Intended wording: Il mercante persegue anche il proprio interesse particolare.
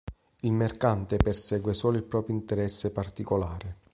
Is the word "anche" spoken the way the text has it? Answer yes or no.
no